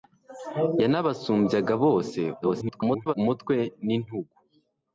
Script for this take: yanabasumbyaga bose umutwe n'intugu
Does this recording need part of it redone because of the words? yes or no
yes